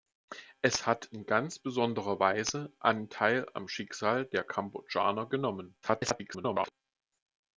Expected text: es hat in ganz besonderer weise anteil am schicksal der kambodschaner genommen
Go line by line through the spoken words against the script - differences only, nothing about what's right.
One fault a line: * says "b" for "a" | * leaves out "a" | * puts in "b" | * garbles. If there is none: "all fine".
* garbles